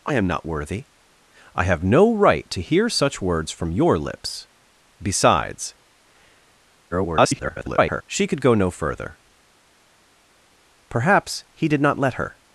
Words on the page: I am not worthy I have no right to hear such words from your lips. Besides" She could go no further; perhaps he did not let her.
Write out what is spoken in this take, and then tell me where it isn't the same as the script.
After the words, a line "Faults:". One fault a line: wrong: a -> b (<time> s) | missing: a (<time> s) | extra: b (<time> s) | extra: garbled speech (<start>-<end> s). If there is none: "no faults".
I am not worthy I have no right to hear such words from your lips. Besides" [garbled] She could go no further; perhaps he did not let her.
Faults:
extra: garbled speech (6.9-8.0 s)